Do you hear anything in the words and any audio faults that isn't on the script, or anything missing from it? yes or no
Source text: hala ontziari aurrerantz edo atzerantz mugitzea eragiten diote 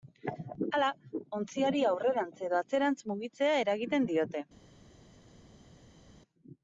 no